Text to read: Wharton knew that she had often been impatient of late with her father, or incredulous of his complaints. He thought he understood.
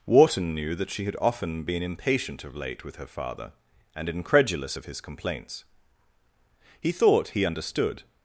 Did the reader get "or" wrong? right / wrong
wrong